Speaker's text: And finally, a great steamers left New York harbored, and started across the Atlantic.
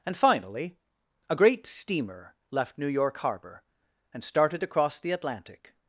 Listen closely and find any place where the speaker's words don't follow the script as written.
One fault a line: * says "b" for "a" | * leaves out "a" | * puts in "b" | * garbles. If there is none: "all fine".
* says "steamer" for "steamers"
* says "harbor" for "harbored"